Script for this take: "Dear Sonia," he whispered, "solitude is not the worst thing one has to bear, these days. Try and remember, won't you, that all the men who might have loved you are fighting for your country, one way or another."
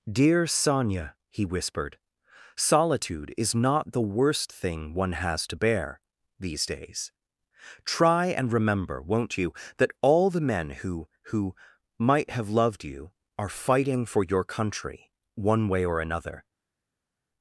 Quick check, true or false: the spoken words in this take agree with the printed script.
false